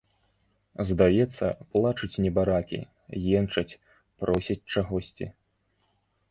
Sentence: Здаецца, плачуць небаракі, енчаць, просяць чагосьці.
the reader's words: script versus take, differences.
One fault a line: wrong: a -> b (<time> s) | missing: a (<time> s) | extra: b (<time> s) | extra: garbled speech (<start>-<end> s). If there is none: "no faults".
no faults